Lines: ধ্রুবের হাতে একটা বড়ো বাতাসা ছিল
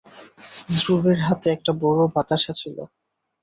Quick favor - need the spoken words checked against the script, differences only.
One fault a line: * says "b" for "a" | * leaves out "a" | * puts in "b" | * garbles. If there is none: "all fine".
all fine